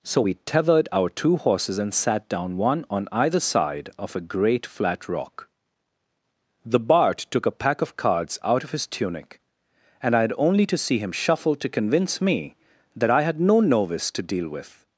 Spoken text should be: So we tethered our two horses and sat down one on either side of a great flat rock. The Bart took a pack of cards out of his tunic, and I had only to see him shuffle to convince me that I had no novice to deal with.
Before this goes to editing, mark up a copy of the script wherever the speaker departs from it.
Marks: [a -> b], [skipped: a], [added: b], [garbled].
So we tethered our two horses and sat down one on either side of a great flat rock. The Bart took a pack of cards out of his tunic, and I had only to see him shuffle to convince me that I had no novice to deal with.